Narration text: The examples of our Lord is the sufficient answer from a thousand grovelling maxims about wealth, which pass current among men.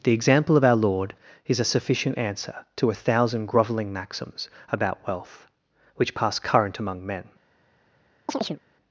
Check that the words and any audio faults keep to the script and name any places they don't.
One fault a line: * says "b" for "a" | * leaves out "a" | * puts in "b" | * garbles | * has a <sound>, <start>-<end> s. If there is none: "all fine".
* says "example" for "examples"
* says "a" for "the"
* says "to" for "from"
* has a chirp, 8.3-8.6 s